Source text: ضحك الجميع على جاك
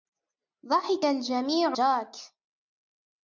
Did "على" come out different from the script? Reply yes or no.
yes